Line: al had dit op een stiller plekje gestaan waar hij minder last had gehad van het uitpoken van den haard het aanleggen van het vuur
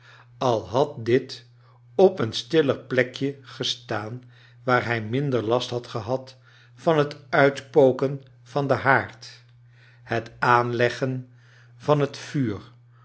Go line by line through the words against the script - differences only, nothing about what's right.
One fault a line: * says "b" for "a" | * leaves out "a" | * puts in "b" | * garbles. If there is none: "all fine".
all fine